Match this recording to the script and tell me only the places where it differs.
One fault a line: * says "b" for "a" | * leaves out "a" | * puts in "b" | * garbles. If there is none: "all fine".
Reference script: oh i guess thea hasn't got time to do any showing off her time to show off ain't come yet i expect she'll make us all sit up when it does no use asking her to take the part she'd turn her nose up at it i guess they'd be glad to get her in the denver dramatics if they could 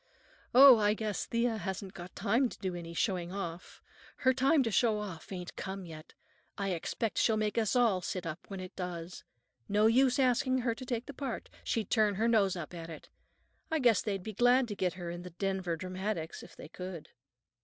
all fine